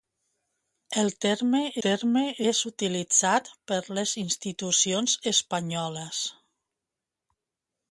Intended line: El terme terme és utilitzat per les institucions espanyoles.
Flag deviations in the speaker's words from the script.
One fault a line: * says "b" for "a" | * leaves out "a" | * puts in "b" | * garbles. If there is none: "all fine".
all fine